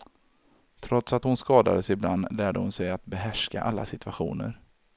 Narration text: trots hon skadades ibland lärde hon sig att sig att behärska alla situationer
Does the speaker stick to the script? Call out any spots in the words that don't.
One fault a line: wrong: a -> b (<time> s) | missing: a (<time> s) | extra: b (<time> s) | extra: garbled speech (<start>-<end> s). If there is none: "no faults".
extra: att (1.1 s)
missing: sig att (3.1 s)